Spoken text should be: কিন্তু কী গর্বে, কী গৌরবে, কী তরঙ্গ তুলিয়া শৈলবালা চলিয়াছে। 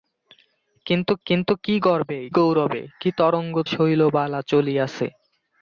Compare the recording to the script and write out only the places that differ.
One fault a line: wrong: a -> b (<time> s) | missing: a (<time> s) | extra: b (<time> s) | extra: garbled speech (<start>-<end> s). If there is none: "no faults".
extra: কিন্তু (1.3 s)
missing: কী (2.2 s)
missing: তুলিয়া (3.5 s)